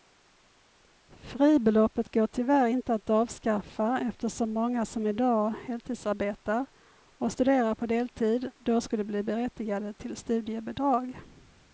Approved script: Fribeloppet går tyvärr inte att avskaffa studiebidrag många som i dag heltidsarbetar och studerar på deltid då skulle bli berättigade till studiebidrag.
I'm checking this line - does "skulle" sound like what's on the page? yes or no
yes